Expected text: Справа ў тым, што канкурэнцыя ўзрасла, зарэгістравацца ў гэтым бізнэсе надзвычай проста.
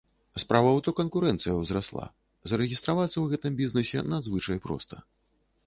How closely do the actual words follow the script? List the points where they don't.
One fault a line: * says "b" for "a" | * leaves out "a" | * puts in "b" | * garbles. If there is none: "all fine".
* leaves out "тым"